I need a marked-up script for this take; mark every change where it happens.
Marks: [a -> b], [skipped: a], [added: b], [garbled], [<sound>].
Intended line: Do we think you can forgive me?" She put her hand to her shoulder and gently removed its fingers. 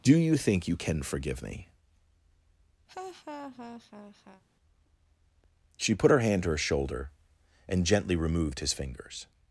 Do [we -> you] think you can forgive me?" [laugh] She put her hand to her shoulder and gently removed [its -> his] fingers.